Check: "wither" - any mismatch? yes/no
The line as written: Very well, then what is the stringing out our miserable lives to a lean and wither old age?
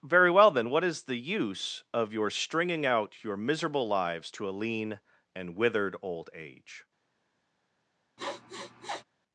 yes